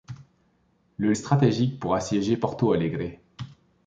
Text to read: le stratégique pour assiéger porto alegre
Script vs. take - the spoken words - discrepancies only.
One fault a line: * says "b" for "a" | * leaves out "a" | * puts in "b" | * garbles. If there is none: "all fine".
all fine